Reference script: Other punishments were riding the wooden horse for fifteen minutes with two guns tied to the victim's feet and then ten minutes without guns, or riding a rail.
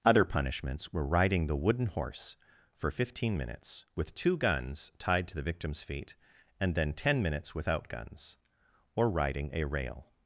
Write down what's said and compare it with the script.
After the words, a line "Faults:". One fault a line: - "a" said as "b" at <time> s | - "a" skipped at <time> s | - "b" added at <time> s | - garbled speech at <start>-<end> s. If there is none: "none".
Other punishments were riding the wooden horse for fifteen minutes with two guns tied to the victim's feet and then ten minutes without guns, or riding a rail.
Faults:
none